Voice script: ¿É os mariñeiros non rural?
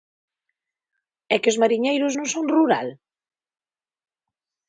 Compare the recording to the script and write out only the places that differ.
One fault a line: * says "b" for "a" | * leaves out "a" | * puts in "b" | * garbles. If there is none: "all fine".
* puts in "que"
* puts in "son"